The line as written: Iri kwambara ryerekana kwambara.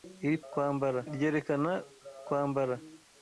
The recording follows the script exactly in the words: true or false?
true